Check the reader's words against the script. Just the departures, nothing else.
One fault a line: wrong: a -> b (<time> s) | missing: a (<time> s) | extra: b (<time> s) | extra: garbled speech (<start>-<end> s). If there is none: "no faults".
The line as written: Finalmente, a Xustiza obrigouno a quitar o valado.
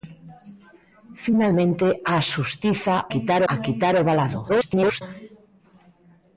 wrong: obrigouno -> quitar (3.1 s)
extra: garbled speech (4.5-5.0 s)